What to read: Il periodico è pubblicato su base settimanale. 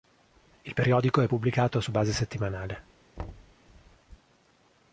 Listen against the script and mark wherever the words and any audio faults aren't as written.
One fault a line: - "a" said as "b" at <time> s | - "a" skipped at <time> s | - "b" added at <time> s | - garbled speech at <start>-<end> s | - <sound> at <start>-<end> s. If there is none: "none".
- thud at 3.2-3.5 s